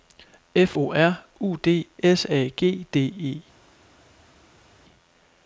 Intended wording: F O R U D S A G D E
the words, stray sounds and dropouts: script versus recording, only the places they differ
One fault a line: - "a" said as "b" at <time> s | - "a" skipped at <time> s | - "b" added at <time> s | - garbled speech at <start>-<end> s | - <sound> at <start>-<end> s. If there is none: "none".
none